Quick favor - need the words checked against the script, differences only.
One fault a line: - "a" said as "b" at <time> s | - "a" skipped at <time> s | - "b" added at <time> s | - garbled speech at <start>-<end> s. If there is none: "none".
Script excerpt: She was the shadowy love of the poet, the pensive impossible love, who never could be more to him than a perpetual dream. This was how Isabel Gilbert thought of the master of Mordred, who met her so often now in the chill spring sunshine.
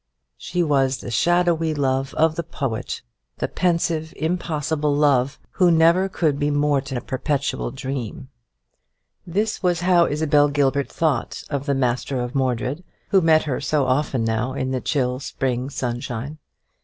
- "him than" skipped at 7.0 s